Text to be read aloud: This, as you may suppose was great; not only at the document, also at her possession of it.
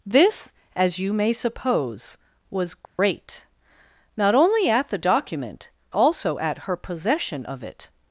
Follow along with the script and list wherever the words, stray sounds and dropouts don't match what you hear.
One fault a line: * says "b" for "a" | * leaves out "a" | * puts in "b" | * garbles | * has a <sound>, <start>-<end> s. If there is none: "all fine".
* has a dropout, 2.8-3.0 s